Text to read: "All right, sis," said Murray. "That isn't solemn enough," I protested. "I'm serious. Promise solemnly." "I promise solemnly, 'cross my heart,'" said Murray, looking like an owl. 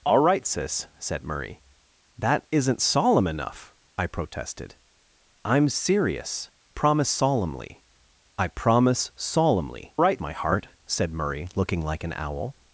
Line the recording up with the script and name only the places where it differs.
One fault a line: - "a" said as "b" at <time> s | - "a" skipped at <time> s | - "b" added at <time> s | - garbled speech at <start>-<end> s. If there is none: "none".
- "cross" said as "right" at 10.0 s